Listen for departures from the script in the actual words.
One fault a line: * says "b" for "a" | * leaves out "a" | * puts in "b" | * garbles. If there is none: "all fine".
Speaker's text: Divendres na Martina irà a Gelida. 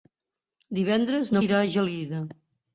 * leaves out "Martina"